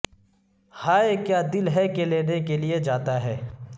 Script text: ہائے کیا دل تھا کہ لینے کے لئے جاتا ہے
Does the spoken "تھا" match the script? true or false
false